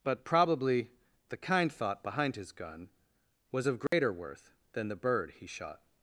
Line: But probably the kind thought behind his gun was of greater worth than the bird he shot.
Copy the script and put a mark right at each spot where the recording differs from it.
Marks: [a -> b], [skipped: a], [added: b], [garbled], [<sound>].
But probably the kind thought behind his gun was of greater [dropout] worth than the bird he shot.